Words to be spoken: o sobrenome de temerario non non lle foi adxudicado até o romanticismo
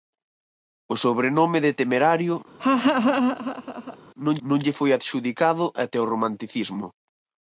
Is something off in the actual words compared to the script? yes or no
no